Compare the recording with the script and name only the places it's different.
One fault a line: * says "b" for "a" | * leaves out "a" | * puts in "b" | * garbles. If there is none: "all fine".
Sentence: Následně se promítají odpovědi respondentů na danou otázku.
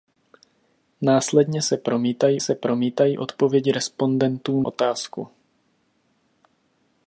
* puts in "se promítají"
* leaves out "na danou"